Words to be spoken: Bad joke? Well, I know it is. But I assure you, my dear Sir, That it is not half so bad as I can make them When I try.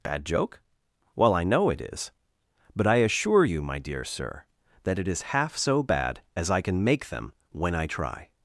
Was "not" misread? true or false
true